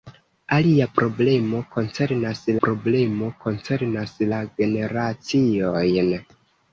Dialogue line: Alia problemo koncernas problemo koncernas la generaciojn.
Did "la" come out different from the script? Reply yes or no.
no